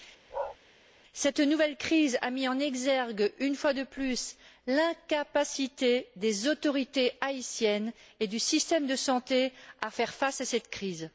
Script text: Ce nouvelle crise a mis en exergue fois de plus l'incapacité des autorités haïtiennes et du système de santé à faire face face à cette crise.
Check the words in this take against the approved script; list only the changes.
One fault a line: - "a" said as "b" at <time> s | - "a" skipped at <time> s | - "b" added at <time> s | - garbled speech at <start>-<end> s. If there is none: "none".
- "Ce" said as "Cette" at 1.1 s
- "une" added at 3.4 s
- "face" skipped at 10.4 s